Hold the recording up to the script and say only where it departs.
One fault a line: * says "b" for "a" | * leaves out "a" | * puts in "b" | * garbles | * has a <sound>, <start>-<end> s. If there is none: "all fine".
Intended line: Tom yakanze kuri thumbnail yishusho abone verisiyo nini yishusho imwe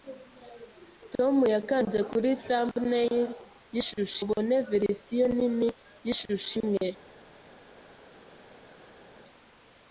all fine